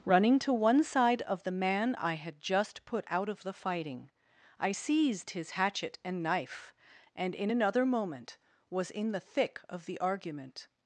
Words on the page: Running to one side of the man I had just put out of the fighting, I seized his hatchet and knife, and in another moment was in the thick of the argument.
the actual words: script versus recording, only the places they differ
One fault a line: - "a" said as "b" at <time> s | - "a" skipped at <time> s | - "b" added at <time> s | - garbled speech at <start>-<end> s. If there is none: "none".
none